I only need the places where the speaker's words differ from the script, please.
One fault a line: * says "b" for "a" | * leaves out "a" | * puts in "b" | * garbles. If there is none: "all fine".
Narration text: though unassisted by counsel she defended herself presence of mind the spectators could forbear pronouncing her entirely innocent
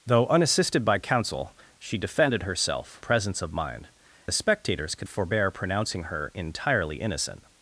all fine